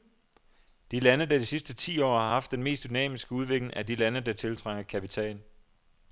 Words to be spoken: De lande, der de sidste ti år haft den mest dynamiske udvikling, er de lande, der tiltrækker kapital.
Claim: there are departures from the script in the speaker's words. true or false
true